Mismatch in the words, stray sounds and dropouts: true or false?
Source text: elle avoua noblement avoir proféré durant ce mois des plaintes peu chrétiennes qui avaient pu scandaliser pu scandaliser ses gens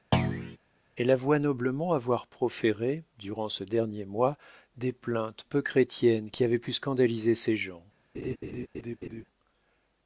true